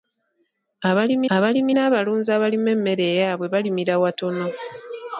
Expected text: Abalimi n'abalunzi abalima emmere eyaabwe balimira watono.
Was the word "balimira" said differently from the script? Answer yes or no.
no